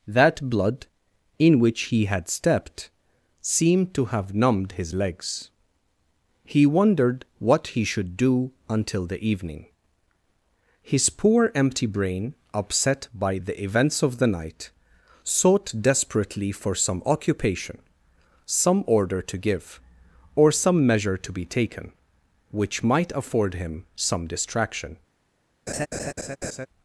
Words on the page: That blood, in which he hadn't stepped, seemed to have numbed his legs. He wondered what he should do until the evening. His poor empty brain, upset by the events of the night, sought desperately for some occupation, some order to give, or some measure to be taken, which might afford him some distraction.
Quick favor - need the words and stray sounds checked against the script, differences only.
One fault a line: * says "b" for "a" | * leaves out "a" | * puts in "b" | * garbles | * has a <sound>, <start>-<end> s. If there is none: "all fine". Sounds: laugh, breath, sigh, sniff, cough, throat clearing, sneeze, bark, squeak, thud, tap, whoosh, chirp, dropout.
* says "had" for "hadn't"
* has a laugh, 25.7-26.7 s